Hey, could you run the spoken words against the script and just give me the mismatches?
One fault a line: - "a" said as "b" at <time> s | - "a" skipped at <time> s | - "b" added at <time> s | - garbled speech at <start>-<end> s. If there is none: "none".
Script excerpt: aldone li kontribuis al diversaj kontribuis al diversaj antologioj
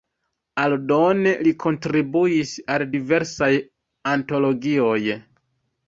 - "kontribuis al diversaj" skipped at 3.5 s